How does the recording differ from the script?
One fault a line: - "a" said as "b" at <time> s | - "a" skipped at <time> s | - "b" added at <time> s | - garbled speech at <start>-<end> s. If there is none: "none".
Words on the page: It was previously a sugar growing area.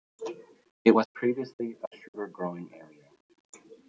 none